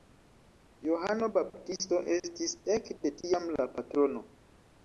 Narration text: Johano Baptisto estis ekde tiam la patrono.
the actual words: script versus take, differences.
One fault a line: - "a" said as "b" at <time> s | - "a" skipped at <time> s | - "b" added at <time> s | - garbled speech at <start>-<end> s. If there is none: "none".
none